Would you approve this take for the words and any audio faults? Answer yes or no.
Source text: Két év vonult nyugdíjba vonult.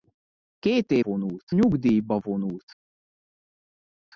yes